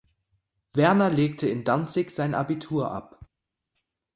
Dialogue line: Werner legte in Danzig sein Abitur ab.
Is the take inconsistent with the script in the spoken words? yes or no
no